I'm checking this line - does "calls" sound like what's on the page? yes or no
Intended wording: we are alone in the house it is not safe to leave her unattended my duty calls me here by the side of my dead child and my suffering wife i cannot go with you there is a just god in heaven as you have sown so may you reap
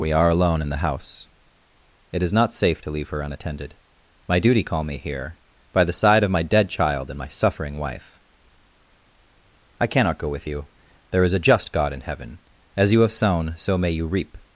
no